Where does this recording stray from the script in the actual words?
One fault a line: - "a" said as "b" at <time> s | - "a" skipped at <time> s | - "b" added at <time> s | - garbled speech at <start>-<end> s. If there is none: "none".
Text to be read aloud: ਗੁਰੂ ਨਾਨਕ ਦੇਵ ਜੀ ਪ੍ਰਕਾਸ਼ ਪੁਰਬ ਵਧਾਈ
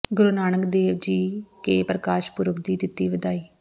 - "ਕੇ" added at 1.6 s
- "ਦੀ ਦਿੱਤੀ" added at 2.6 s